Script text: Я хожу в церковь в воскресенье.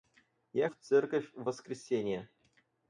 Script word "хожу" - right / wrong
wrong